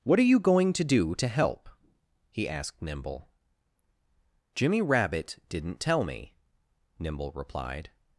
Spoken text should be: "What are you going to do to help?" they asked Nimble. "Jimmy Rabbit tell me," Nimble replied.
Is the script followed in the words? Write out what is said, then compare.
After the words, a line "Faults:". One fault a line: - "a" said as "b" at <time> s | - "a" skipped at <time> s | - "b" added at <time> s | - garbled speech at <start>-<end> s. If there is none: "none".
"What are you going to do to help?" he asked Nimble. "Jimmy Rabbit didn't tell me," Nimble replied.
Faults:
- "they" said as "he" at 2.3 s
- "didn't" added at 5.5 s